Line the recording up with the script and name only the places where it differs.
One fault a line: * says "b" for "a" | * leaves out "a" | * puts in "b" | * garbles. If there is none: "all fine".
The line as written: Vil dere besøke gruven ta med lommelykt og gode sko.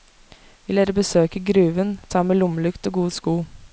all fine